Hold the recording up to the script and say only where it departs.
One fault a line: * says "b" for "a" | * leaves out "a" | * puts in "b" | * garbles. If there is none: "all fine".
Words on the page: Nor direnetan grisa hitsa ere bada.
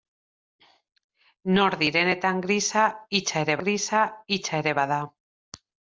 * puts in "grisa hitsa ere"